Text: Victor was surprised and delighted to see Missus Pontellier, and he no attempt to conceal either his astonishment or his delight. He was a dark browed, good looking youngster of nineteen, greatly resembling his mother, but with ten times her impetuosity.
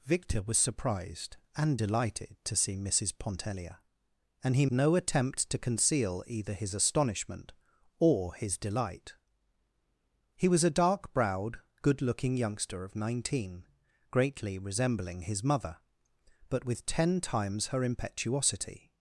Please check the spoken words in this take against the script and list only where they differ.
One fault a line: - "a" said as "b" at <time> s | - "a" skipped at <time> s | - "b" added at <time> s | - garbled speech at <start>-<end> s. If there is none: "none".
none